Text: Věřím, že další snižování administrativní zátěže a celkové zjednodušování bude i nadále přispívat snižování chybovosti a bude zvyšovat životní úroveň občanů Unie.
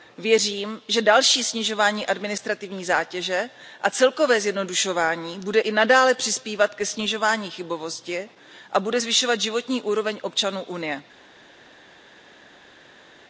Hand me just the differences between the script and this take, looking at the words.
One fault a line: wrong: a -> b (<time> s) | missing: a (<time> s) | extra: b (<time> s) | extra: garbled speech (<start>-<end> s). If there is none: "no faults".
extra: ke (6.7 s)